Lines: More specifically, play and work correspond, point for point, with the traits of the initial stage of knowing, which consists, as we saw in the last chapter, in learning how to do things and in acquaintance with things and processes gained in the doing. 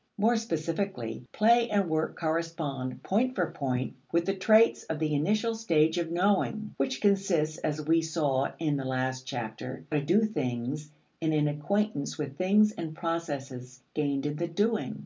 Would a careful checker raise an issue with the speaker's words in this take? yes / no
yes